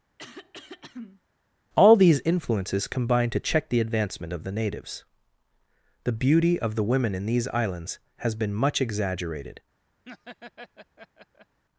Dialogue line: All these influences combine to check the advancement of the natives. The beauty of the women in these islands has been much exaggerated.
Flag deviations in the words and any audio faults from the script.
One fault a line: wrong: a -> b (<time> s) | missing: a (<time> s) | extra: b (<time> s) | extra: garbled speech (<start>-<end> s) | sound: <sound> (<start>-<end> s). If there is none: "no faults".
sound: throat clearing (0.2-1.2 s)
sound: laugh (10.0-11.6 s)